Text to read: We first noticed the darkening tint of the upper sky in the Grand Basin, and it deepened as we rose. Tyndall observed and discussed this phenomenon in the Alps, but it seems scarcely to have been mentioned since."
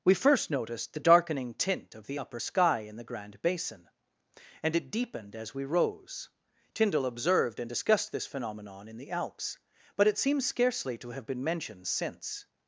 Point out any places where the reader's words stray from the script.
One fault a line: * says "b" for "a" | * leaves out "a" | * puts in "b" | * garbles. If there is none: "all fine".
all fine